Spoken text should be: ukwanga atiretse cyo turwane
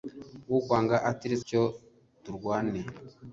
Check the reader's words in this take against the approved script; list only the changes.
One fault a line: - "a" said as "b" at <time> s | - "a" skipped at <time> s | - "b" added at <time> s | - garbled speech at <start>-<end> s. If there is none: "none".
none